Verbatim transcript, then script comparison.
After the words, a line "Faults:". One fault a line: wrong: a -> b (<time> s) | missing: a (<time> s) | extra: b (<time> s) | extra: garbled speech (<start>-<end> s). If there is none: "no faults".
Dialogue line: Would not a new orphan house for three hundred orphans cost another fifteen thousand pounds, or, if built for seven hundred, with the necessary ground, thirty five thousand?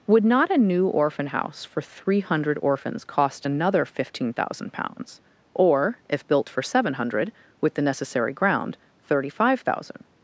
Would not a new orphan house for three hundred orphans cost another fifteen thousand pounds, or, if built for seven hundred, with the necessary ground, thirty five thousand?
Faults:
no faults